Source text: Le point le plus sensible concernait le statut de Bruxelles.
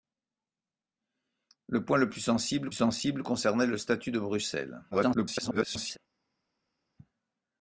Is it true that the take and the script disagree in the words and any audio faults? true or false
true